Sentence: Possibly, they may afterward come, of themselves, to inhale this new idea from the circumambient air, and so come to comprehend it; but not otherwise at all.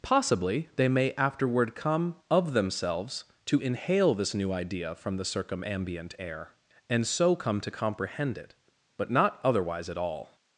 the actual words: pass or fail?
pass